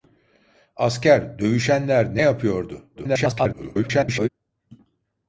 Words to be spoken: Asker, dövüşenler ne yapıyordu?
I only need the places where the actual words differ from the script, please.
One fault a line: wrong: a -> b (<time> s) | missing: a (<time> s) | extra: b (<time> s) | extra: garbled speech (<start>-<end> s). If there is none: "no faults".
extra: garbled speech (3.0-4.3 s)